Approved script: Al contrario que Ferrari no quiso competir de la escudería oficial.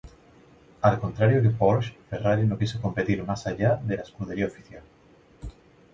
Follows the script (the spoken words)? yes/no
no